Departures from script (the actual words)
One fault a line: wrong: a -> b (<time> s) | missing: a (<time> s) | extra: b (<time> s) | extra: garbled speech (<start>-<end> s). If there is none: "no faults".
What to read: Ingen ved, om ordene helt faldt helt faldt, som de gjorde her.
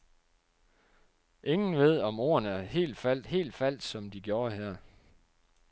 no faults